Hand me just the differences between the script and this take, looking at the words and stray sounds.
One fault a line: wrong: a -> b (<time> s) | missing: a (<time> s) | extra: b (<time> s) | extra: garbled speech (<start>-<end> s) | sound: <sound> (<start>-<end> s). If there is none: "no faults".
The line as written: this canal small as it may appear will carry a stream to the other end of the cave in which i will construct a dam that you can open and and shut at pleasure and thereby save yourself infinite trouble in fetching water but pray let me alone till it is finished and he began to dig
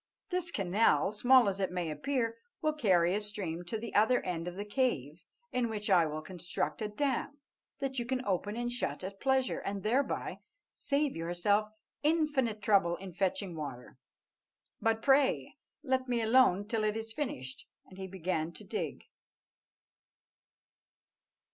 missing: and (8.7 s)